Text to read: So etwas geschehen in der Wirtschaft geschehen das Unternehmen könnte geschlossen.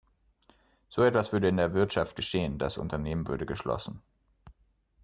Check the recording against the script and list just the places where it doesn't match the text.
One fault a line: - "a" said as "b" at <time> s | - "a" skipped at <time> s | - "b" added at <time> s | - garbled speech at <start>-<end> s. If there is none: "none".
- "geschehen" said as "würde" at 1.3 s
- "könnte" said as "würde" at 3.3 s